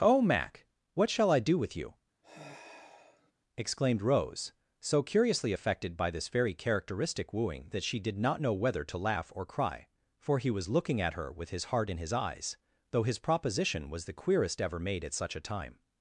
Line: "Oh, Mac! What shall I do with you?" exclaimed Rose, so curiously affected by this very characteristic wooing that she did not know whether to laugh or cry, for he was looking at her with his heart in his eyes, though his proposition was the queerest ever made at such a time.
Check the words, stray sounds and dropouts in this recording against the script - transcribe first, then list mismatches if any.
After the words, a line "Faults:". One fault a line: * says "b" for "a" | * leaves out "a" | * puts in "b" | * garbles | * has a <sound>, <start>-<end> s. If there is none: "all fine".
"Oh, Mac! What shall I do with you?" exclaimed Rose, so curiously affected by this very characteristic wooing that she did not know whether to laugh or cry, for he was looking at her with his heart in his eyes, though his proposition was the queerest ever made at such a time.
Faults:
* has a sigh, 2.2-3.3 s